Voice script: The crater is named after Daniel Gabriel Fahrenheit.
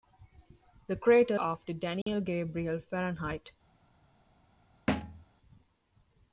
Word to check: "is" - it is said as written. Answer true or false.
false